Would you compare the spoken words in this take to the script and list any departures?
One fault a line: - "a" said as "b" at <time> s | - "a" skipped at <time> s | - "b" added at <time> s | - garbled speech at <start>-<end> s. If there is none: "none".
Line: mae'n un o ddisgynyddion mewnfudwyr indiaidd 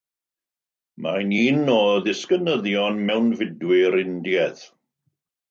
none